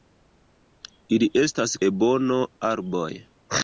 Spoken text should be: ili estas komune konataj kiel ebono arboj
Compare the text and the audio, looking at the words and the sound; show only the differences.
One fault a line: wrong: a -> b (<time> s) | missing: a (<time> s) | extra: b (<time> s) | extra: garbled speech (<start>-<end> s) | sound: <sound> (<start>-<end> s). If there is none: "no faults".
missing: komune konataj kiel (1.8 s)